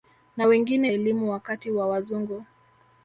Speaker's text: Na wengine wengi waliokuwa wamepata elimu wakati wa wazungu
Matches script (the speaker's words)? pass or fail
fail